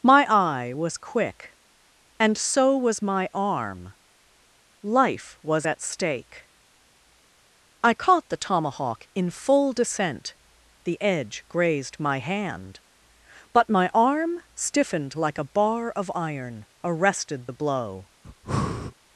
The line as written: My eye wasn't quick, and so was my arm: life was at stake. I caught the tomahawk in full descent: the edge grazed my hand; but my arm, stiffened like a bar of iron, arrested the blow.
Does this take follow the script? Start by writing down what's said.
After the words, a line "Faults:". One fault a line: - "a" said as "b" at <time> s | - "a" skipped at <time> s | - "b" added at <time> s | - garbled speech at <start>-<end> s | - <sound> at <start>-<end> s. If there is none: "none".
My eye was quick, and so was my arm: life was at stake. I caught the tomahawk in full descent: the edge grazed my hand; but my arm, stiffened like a bar of iron, arrested the blow.
Faults:
- "wasn't" said as "was" at 0.7 s
- breath at 18.2-18.9 s